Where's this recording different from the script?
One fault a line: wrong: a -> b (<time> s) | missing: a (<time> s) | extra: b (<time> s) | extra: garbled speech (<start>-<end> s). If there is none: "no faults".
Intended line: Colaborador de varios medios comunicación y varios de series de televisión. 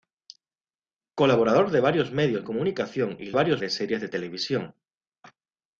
no faults